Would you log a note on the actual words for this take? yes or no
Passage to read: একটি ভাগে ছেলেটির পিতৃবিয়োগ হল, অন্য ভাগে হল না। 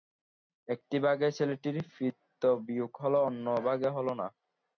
no